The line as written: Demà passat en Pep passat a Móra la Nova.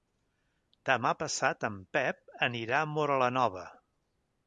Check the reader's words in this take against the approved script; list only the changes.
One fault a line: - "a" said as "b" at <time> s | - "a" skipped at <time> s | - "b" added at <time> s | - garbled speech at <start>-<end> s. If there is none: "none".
- "passat" said as "anirà" at 2.5 s